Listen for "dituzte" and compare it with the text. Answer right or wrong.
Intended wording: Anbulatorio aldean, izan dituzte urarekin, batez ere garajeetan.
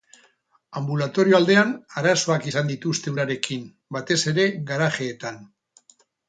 right